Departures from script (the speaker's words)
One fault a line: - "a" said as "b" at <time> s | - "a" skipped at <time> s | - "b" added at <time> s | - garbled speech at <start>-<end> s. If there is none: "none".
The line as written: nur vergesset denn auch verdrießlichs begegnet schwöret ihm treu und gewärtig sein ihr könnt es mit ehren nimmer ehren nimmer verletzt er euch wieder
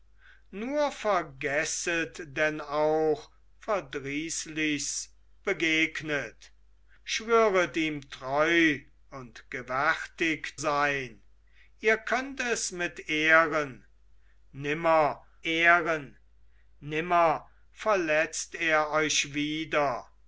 none